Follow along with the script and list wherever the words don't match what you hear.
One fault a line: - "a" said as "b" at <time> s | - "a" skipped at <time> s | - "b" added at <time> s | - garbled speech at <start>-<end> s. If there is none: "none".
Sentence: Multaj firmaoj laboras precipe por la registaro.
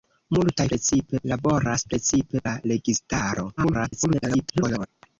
- "firmaoj" said as "precipe" at 0.7 s
- "por" skipped at 2.4 s
- garbled speech at 3.6-4.9 s